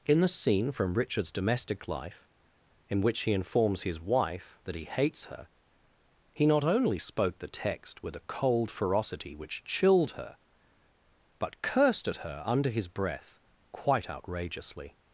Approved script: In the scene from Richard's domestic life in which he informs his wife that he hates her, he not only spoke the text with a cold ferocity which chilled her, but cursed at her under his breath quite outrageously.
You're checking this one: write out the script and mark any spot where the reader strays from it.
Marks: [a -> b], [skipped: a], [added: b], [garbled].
In the scene from Richard's domestic life in which he informs his wife that he hates her, he not only spoke the text with a cold ferocity which chilled her, but cursed at her under his breath quite outrageously.